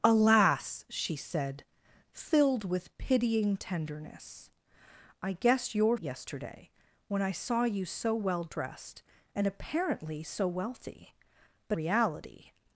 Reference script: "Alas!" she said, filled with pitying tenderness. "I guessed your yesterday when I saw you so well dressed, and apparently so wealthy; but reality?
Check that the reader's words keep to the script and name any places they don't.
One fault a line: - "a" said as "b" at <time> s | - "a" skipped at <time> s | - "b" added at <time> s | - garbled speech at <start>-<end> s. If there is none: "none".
none